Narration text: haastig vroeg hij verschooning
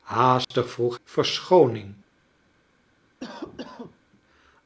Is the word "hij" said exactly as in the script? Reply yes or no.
no